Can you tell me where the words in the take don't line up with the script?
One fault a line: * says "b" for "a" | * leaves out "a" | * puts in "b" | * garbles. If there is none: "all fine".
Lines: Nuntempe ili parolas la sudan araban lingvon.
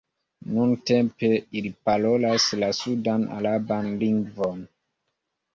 all fine